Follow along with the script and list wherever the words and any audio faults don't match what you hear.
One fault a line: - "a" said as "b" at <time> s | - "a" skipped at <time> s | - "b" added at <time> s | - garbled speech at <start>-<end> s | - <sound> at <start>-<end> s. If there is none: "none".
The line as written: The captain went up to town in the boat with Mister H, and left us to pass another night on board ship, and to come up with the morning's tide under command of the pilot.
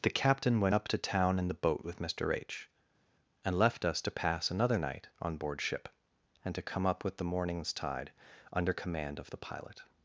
none